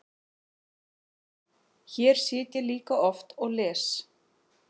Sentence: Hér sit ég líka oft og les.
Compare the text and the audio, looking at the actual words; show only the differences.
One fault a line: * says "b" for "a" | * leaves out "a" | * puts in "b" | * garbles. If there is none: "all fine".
all fine